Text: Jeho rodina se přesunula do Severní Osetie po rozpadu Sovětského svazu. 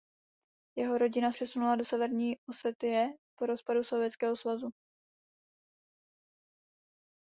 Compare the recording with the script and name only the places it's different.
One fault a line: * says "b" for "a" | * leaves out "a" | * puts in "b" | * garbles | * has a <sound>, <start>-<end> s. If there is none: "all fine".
* leaves out "se"